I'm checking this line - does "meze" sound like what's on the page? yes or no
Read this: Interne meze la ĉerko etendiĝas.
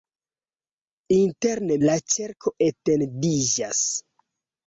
no